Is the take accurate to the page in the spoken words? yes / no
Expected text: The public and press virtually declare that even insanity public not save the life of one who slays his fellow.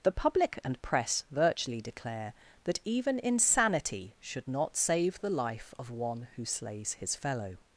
no